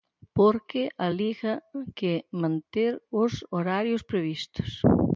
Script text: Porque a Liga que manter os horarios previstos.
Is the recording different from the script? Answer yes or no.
no